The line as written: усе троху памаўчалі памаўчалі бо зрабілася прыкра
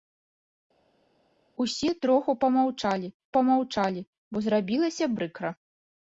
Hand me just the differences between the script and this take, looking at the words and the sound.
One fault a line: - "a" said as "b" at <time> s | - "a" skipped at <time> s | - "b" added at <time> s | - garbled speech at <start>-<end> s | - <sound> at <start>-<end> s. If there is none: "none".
none